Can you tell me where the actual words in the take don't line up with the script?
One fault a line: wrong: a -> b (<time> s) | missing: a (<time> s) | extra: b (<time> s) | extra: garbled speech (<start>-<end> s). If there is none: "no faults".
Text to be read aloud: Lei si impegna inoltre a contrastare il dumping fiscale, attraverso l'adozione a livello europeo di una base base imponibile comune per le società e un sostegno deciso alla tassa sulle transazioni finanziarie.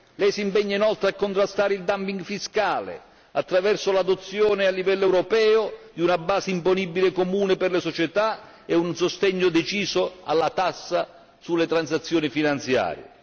missing: base (6.5 s)